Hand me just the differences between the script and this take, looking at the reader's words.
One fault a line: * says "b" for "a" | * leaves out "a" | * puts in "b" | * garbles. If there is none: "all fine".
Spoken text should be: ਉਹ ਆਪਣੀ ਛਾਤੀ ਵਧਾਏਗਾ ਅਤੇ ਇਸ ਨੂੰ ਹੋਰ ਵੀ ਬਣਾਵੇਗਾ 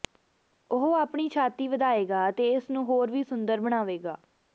* puts in "ਸੁੰਦਰ"